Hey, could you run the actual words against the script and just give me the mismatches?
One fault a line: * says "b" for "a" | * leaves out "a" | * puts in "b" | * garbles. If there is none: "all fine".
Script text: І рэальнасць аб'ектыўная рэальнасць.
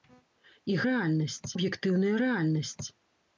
all fine